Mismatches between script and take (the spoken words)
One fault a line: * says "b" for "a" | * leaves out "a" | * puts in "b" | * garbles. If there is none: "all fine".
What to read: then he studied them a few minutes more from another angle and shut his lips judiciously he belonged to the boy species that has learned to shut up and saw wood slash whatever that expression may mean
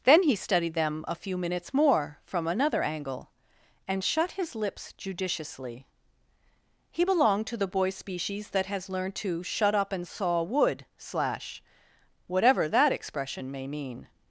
all fine